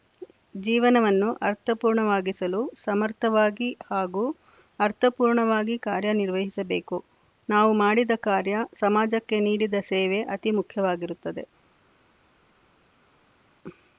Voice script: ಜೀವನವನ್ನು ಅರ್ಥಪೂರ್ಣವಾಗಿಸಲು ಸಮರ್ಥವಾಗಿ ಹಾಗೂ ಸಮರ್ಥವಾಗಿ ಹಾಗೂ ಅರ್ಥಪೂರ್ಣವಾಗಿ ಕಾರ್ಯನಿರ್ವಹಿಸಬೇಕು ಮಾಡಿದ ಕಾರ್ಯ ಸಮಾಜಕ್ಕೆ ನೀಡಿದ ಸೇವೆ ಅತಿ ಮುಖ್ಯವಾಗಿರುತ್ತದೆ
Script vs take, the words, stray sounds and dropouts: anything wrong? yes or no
yes